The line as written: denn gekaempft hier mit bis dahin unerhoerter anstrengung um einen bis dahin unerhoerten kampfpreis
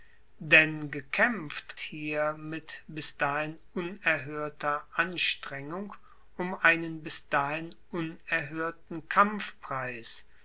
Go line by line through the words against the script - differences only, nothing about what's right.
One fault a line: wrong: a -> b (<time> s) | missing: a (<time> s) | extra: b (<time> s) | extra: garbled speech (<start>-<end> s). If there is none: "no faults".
no faults